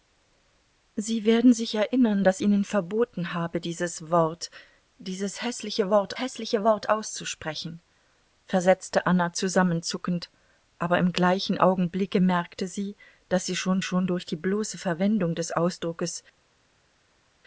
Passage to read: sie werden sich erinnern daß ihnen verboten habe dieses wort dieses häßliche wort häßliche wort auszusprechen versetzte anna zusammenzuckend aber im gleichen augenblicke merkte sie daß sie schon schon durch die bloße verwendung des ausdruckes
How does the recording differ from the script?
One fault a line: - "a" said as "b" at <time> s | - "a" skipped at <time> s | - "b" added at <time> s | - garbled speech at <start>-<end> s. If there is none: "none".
none